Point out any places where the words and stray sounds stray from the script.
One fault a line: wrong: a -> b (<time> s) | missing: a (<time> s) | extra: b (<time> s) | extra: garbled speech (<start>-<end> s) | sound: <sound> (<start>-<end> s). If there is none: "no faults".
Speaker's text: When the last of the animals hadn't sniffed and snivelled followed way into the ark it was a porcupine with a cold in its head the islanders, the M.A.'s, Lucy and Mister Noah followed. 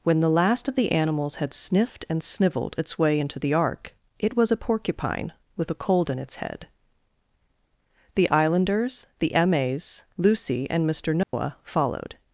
wrong: hadn't -> had (1.4 s)
wrong: followed -> its (2.8 s)
sound: dropout (11.2-11.3 s)